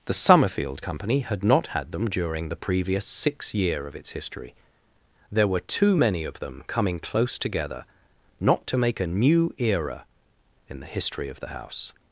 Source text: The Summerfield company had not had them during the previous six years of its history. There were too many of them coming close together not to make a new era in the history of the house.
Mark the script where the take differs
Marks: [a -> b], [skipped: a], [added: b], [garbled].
The Summerfield company had not had them during the previous six [years -> year] of its history. There were too many of them coming close together not to make a new era in the history of the house.